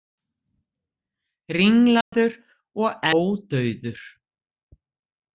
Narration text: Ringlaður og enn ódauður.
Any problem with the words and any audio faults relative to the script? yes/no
yes